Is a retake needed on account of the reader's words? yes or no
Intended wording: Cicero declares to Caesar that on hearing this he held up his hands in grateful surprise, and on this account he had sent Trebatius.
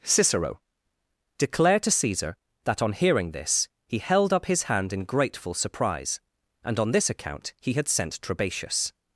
yes